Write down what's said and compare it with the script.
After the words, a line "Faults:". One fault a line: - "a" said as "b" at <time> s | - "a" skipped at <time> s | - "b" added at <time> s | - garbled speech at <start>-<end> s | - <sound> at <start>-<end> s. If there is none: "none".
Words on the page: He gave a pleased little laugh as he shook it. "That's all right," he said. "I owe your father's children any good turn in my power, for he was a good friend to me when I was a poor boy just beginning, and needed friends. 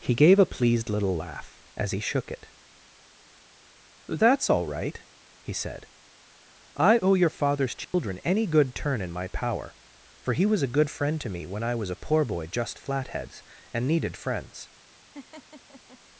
He gave a pleased little laugh as he shook it. "That's all right," he said. "I owe your father's children any good turn in my power, for he was a good friend to me when I was a poor boy just flatheads, and needed friends.
Faults:
- dropout at 7.8-7.9 s
- "beginning" said as "flatheads" at 12.8 s
- laugh at 15.1-16.0 s